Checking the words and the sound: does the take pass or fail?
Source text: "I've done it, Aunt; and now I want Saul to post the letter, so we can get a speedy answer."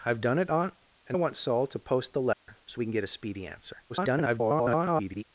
fail